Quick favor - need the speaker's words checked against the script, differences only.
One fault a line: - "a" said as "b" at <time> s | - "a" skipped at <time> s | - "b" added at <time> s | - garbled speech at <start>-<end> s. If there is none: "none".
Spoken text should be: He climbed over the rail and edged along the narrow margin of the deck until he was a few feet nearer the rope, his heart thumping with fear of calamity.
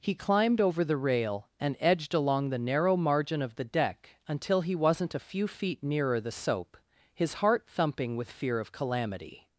- "was" said as "wasn't" at 4.7 s
- "rope" said as "soap" at 6.3 s